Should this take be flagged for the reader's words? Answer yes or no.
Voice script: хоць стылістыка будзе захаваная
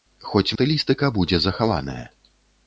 no